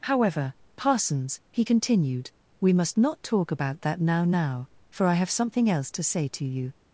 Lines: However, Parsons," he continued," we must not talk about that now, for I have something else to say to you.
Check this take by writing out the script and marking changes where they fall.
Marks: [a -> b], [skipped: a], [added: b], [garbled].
However, Parsons," he continued," we must not talk about that now, [added: now] for I have something else to say to you.